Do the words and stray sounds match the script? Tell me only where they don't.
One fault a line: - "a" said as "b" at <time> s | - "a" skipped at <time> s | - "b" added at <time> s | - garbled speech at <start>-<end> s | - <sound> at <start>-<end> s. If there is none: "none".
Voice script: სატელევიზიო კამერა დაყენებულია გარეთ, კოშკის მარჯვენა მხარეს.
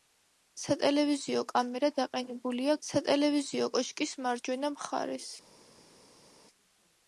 - "გარეთ" said as "სატელევიზიო" at 2.9 s